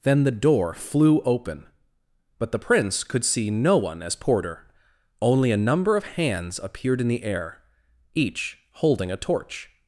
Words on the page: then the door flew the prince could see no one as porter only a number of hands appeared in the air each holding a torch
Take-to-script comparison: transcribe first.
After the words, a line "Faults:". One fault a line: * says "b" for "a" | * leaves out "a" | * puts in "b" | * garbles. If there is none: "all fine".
then the door flew open but the prince could see no one as porter only a number of hands appeared in the air each holding a torch
Faults:
* puts in "open but"